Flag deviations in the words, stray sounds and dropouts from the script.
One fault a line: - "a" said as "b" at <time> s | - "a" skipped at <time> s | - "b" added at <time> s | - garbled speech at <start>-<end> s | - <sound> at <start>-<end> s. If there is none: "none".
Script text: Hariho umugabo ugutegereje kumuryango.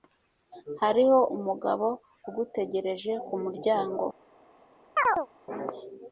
- chirp at 5.0-5.3 s